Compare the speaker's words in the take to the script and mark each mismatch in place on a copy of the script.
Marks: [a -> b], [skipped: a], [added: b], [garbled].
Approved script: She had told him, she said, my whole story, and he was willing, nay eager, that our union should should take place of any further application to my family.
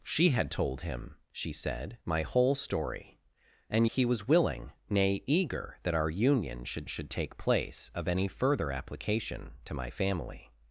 She had told him, she said, my whole story, and he was willing, nay eager, that our union should should take place of any further application to my family.